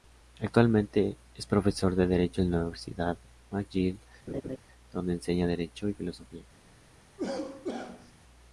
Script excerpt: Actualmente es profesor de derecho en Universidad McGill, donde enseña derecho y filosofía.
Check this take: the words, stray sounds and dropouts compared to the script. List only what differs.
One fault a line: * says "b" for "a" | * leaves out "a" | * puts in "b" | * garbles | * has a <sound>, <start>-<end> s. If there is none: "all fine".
* puts in "la"
* has a laugh, 4.3-4.6 s
* has a cough, 7.2-8.1 s